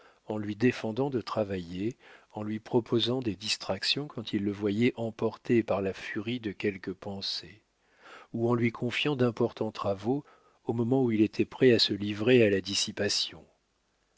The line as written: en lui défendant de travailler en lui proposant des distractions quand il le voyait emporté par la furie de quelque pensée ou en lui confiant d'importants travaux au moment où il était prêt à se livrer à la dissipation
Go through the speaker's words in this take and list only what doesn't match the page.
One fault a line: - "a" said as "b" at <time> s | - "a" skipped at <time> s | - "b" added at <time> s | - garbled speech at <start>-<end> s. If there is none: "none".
none